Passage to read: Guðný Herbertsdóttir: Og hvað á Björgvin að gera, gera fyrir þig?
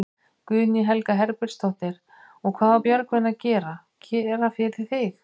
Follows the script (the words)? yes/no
no